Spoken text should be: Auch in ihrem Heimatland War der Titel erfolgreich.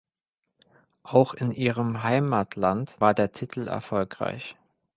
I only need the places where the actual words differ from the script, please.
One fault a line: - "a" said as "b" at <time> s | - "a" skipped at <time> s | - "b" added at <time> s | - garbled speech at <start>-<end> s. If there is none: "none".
none